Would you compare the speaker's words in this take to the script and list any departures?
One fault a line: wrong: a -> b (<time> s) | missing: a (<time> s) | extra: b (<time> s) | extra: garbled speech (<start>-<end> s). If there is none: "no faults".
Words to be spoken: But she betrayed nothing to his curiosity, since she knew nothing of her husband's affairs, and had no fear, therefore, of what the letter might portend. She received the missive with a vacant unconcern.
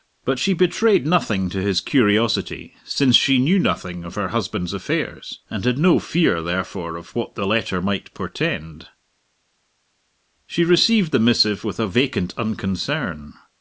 no faults